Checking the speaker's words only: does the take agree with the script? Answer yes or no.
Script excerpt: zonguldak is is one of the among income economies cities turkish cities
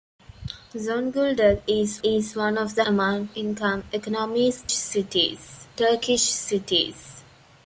yes